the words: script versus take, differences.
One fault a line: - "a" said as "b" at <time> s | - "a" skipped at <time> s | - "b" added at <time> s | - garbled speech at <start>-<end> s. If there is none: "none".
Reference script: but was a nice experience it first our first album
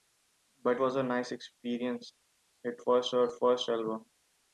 none